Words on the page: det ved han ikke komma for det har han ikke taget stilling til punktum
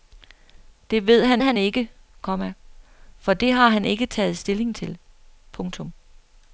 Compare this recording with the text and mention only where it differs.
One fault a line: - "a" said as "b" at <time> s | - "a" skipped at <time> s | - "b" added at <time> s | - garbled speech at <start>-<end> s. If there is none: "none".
- "han" added at 1.4 s